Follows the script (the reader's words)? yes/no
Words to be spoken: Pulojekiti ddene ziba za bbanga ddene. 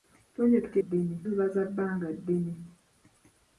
yes